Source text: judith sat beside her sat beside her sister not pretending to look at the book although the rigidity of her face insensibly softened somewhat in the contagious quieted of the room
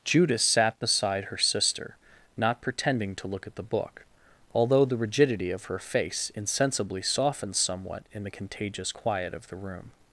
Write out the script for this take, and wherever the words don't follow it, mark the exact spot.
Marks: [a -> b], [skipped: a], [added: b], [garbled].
judith sat beside her [skipped: sat beside her] sister not pretending to look at the book although the rigidity of her face insensibly softened somewhat in the contagious [quieted -> quiet] of the room